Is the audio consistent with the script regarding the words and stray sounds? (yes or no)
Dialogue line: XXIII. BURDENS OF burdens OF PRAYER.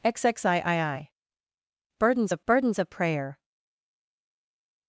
yes